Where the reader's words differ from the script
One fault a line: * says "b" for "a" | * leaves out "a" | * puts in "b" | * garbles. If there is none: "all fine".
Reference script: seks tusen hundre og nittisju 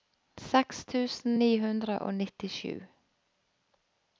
* puts in "ni"